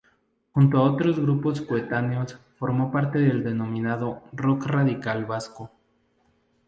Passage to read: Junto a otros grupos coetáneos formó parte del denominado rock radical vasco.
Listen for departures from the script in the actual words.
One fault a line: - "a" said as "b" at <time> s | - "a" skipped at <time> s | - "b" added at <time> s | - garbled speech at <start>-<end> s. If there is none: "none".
none